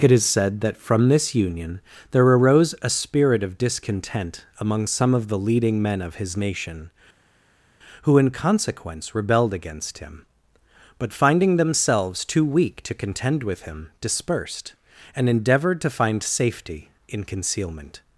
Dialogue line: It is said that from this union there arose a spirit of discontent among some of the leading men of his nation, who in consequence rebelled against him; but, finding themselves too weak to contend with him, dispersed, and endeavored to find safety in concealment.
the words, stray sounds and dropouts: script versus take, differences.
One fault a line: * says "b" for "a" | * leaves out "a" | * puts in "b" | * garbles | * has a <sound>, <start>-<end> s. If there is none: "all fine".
all fine